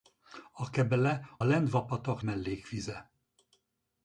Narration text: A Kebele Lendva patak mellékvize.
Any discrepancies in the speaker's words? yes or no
no